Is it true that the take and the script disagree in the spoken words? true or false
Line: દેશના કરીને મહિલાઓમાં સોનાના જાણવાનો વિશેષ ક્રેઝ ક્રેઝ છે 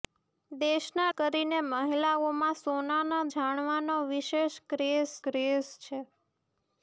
false